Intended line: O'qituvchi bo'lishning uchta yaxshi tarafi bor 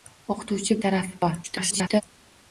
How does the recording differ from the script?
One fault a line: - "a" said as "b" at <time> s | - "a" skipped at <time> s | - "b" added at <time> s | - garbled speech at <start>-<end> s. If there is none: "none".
- "bo'lishning uchta yaxshi" skipped at 0.8 s
- garbled speech at 1.4-2.0 s